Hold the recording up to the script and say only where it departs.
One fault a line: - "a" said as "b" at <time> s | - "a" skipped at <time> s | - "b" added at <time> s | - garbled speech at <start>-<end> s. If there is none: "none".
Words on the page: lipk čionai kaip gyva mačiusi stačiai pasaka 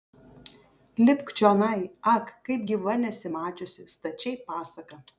- "ak" added at 2.1 s
- "nesi" added at 3.0 s